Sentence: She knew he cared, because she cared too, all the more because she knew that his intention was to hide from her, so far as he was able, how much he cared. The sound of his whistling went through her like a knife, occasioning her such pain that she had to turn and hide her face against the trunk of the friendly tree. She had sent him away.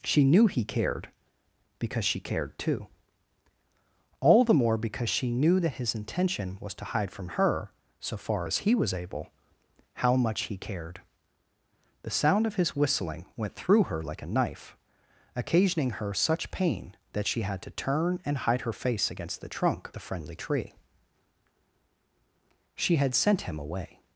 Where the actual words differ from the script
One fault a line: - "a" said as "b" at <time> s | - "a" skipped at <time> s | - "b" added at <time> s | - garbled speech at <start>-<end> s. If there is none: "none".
- "of" skipped at 19.9 s